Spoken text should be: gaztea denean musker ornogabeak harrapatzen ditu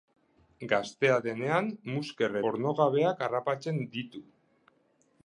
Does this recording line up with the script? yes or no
yes